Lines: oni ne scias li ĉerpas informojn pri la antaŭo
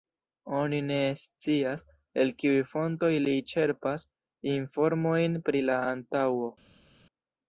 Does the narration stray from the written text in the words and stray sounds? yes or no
yes